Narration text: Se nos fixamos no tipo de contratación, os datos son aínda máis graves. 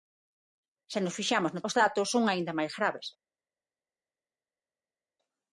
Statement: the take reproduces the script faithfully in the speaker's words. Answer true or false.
false